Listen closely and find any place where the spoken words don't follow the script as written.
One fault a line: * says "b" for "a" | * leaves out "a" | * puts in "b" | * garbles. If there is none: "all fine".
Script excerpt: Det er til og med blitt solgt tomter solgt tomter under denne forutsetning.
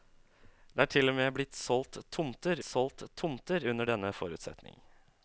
all fine